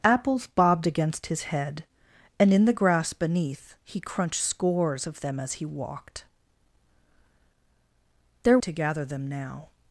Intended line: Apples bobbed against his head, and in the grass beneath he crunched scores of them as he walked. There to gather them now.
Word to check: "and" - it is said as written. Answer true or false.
true